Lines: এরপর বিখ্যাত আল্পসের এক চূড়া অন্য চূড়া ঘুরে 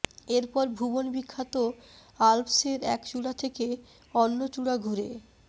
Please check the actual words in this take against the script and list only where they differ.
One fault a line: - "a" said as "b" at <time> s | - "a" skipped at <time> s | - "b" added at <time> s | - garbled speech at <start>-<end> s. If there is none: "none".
- "ভুবন" added at 0.8 s
- "থেকে" added at 3.4 s